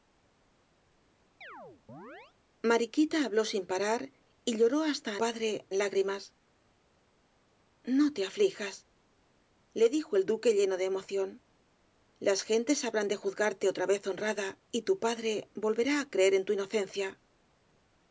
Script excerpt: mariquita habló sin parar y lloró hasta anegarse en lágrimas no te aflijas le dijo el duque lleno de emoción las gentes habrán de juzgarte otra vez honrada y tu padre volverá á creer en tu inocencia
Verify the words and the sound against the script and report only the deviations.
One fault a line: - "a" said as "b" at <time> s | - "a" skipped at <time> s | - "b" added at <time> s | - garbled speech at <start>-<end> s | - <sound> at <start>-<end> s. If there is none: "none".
- chirp at 1.4-2.3 s
- "anegarse" said as "padre" at 5.1 s